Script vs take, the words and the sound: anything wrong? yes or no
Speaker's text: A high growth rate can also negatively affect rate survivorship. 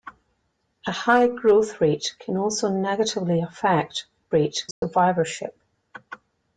yes